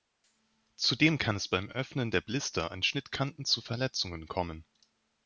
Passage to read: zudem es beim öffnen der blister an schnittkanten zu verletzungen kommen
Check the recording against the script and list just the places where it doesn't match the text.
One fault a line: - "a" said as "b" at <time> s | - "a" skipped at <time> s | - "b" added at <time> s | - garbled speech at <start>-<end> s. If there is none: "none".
- "kann" added at 1.2 s